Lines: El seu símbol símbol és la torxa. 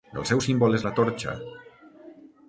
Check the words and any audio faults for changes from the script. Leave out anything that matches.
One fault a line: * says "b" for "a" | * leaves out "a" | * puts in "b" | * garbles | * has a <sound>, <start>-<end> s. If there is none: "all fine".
* leaves out "símbol"